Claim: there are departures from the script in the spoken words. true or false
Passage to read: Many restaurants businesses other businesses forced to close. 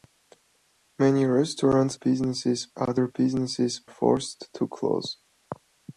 false